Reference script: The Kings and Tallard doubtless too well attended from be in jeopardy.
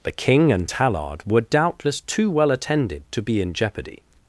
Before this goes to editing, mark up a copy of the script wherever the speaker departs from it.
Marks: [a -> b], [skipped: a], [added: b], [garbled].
The [Kings -> King] and Tallard [added: were] doubtless too well attended [from -> to] be in jeopardy.